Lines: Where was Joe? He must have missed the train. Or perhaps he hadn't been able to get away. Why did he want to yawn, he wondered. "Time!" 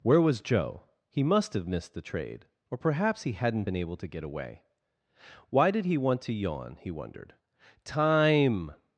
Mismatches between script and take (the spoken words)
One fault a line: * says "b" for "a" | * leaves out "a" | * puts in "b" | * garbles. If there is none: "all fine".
* says "trade" for "train"